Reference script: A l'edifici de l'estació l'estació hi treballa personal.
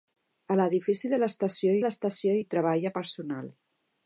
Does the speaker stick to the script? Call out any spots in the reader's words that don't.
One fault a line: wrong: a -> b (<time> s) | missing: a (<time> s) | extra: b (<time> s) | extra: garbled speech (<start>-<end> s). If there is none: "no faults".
no faults